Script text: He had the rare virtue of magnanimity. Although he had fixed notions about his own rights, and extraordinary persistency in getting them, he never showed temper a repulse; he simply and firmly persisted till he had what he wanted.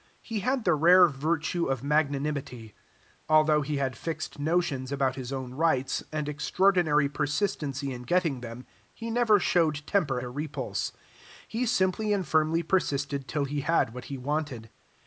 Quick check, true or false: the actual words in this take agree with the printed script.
true